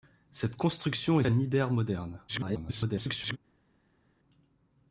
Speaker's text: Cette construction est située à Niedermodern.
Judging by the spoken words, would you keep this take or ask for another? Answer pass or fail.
fail